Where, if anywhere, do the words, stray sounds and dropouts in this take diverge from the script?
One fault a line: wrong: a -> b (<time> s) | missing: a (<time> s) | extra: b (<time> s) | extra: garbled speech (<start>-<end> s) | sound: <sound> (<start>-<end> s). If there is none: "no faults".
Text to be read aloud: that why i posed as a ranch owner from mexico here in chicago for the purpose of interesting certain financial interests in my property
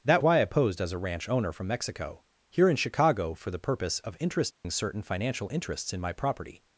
sound: dropout (4.5-4.6 s)